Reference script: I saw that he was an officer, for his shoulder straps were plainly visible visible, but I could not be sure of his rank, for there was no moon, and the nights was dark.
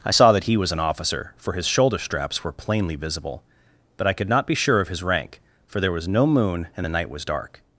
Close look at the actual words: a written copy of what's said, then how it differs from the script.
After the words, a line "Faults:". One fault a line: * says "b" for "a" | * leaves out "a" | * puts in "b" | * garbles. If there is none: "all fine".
I saw that he was an officer, for his shoulder straps were plainly visible, but I could not be sure of his rank, for there was no moon, and the night was dark.
Faults:
* leaves out "visible"
* says "night" for "nights"